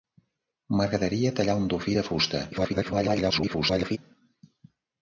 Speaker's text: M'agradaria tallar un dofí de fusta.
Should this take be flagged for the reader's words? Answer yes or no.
yes